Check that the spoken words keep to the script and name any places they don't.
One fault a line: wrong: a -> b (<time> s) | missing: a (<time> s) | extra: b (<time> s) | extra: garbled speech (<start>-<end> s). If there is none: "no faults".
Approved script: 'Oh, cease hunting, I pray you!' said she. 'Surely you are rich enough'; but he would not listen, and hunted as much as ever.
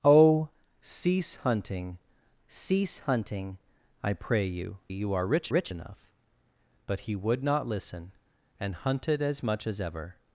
extra: cease hunting (2.5 s)
missing: said she Surely (4.8 s)
extra: rich (5.5 s)